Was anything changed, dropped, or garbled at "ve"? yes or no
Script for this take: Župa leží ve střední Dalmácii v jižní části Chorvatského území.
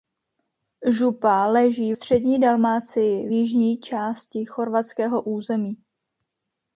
yes